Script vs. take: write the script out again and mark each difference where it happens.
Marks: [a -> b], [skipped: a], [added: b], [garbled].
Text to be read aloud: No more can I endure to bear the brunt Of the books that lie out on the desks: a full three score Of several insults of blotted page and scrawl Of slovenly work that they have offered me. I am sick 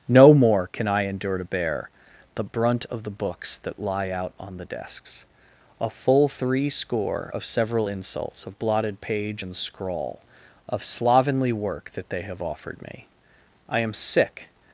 No more can I endure to bear the brunt Of the books that lie out on the desks: a full three score Of several insults of blotted page and scrawl Of slovenly work that they have offered me. I am sick